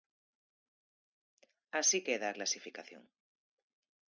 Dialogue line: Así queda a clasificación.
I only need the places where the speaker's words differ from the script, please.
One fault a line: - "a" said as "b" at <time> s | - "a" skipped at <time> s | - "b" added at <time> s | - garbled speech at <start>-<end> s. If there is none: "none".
none